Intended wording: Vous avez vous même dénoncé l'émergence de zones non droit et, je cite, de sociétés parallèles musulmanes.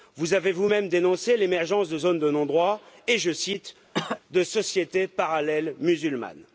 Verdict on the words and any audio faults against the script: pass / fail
fail